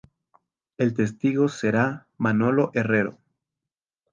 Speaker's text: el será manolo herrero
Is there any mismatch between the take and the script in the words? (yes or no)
yes